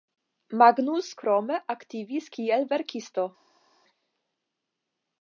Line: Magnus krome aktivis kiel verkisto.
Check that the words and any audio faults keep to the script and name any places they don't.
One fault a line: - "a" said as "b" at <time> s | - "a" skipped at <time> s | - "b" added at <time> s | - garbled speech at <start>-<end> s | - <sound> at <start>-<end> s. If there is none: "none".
none